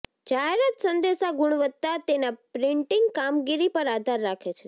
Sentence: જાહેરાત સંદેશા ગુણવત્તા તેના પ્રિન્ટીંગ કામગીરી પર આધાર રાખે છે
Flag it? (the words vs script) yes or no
no